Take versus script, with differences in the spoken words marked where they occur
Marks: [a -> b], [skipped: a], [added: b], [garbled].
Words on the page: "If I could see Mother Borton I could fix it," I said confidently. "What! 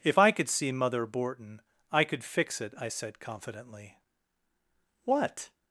"If I could see Mother Borton I could fix it," I said confidently. "What!